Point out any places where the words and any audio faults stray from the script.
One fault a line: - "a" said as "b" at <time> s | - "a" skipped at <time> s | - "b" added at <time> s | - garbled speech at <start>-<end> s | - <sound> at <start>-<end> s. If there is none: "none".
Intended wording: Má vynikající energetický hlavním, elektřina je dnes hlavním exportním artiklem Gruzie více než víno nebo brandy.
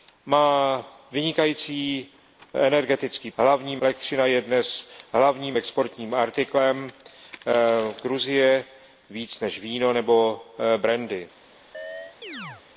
- chirp at 11.7-12.6 s